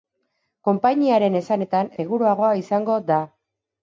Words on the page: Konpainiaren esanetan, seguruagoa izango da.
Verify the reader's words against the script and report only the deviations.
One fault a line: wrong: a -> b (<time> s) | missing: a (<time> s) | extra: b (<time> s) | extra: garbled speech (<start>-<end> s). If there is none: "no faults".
no faults